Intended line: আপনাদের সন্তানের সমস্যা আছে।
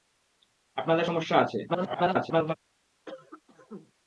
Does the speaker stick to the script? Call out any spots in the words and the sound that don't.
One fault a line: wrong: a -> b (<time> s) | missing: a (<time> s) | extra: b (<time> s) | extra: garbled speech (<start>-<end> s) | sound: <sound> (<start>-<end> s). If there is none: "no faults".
missing: সন্তানের (1.1 s)
extra: garbled speech (1.7-2.5 s)
sound: cough (3.1-3.9 s)